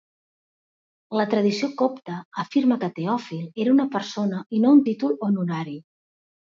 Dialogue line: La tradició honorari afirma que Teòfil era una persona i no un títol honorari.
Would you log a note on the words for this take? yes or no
yes